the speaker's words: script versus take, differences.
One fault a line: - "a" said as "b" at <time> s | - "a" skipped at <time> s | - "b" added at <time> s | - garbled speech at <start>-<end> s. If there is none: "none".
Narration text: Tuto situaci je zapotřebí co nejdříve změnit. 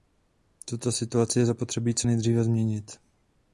none